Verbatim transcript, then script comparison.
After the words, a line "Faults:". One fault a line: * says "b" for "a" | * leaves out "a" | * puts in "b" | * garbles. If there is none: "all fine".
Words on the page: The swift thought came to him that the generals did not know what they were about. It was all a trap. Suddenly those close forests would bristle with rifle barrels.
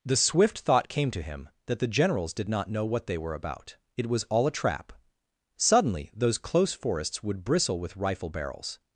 The swift thought came to him that the generals did not know what they were about. It was all a trap. Suddenly those close forests would bristle with rifle barrels.
Faults:
all fine